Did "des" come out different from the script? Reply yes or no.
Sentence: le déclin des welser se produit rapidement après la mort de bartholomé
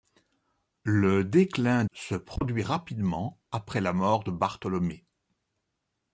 yes